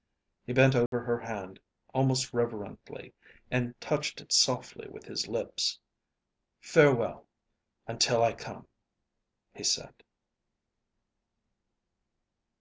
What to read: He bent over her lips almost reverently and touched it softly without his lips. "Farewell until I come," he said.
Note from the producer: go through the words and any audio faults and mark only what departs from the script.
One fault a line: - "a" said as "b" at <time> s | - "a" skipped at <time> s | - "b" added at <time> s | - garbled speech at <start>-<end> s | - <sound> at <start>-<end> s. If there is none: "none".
- dropout at 0.9-0.9 s
- "lips" said as "hand" at 1.2 s
- "without" said as "with" at 4.9 s